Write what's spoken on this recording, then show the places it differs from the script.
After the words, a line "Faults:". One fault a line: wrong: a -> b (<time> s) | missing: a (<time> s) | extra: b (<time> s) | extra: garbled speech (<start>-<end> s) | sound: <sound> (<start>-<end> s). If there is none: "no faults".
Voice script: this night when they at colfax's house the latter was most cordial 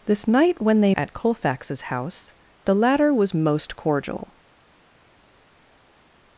this night when they at colfax's house the latter was most cordial
Faults:
no faults